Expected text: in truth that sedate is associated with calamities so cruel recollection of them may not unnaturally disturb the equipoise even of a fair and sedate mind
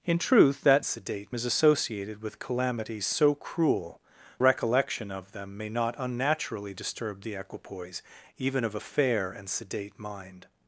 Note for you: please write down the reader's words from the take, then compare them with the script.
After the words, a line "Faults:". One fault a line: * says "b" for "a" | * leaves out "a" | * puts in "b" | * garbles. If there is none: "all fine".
in truth that sedate is associated with calamities so cruel recollection of them may not unnaturally disturb the equipoise even of a fair and sedate mind
Faults:
all fine